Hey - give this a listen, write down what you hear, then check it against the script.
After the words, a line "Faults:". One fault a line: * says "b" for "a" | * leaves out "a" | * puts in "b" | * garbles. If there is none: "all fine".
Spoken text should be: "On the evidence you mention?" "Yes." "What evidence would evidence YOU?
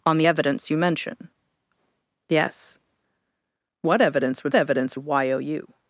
"On the evidence you mention?" "Yes." "What evidence would evidence YOU?
Faults:
all fine